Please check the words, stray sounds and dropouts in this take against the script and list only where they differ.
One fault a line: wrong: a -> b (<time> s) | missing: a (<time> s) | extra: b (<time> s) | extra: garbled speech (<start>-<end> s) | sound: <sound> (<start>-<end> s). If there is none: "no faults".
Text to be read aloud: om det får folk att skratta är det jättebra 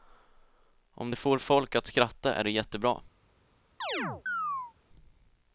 sound: chirp (3.8-4.7 s)